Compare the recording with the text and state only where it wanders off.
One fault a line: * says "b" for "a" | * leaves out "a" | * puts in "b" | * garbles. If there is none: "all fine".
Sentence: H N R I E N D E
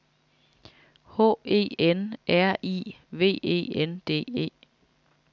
* puts in "E"
* puts in "V"